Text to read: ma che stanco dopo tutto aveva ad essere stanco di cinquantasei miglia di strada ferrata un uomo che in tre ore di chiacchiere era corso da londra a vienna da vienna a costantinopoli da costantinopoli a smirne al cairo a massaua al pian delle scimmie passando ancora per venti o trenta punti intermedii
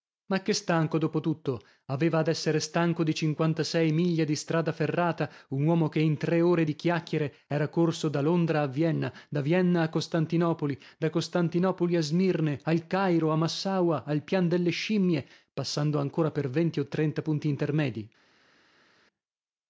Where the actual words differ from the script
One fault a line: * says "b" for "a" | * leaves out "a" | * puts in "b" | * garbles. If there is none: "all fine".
all fine